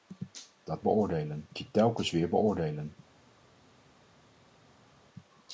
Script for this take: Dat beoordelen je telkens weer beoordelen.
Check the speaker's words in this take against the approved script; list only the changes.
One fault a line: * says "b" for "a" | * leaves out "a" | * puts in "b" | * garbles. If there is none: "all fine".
all fine